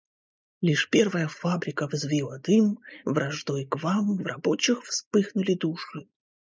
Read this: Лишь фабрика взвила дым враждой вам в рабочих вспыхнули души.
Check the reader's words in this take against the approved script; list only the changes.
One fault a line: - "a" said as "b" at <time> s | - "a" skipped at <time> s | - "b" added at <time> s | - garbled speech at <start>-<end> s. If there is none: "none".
- "первая" added at 0.9 s
- "к" added at 3.6 s